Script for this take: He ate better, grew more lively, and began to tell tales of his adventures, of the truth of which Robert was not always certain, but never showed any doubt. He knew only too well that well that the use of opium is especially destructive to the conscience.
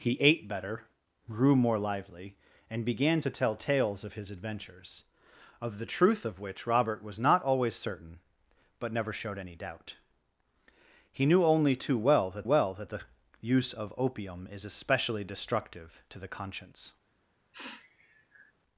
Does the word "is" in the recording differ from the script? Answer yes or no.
no